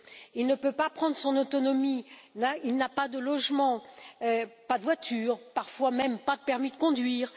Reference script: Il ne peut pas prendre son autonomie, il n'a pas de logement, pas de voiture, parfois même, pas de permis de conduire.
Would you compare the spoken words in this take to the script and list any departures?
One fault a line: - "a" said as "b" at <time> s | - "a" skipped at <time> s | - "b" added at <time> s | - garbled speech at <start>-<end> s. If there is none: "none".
none